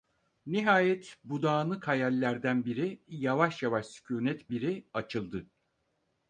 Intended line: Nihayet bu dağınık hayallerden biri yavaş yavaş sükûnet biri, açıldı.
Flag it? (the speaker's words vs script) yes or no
no